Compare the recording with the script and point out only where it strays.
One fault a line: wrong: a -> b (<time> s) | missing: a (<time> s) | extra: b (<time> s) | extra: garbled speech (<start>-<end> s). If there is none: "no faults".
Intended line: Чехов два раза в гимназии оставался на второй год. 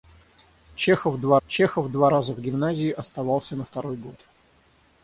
extra: чехов два (1.5 s)